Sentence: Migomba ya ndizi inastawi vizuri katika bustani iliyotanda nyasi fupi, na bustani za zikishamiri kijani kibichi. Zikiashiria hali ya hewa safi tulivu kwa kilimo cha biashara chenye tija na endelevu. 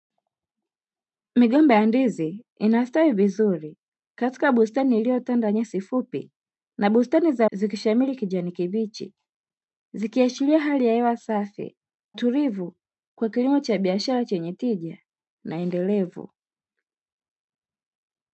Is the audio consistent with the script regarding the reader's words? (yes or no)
yes